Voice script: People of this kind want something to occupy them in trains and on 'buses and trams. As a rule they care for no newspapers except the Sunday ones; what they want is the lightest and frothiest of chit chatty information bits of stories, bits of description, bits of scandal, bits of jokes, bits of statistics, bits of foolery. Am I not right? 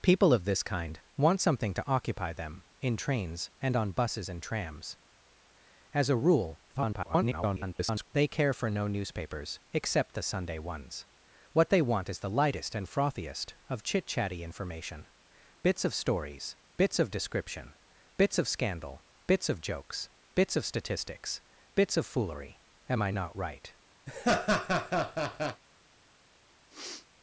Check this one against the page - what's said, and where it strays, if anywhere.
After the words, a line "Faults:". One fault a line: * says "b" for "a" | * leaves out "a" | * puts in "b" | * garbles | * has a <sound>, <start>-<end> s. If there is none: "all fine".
People of this kind want something to occupy them in trains and on 'buses and trams. As a rule [garbled] they care for no newspapers except the Sunday ones; what they want is the lightest and frothiest of chit chatty information bits of stories, bits of description, bits of scandal, bits of jokes, bits of statistics, bits of foolery. Am I not right?
Faults:
* garbles
* has a laugh, 24.1-25.6 s
* has a sniff, 26.7-27.1 s